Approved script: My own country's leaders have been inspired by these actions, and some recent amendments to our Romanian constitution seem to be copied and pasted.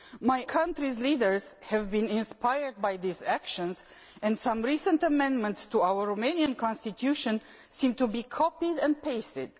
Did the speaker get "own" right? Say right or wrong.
wrong